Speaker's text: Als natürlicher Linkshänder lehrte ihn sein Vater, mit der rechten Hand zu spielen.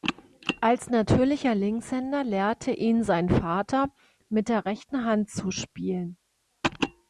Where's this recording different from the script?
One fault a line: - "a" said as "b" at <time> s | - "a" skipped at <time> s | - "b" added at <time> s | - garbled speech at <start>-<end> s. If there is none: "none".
none